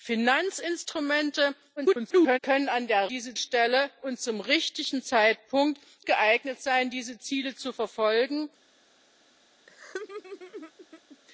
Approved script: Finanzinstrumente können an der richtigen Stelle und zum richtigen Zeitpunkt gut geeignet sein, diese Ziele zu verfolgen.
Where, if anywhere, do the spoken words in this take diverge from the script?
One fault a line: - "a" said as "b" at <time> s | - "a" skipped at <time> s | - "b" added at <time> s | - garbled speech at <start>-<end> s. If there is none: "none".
- garbled speech at 1.8-2.4 s
- "richtigen" said as "diese" at 3.1 s
- "gut" skipped at 5.8 s